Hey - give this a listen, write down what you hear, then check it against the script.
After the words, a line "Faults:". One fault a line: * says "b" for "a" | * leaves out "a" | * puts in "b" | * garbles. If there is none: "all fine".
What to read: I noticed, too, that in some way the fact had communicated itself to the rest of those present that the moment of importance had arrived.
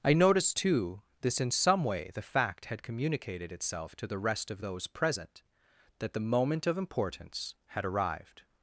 I noticed, too, this in some way the fact had communicated itself to the rest of those present that the moment of importance had arrived.
Faults:
* says "this" for "that"